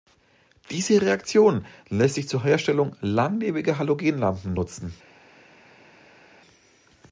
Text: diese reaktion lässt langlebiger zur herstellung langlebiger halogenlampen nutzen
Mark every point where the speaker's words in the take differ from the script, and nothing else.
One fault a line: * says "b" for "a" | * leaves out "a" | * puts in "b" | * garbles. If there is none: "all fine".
* says "sich" for "langlebiger"